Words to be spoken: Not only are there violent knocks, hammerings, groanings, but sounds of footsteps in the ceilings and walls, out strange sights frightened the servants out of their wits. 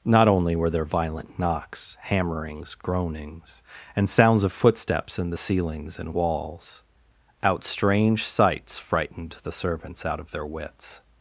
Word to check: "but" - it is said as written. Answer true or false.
false